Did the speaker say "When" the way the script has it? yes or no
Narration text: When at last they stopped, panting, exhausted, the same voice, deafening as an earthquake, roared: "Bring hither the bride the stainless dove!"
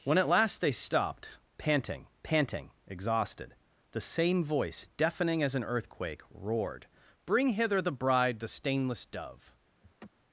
yes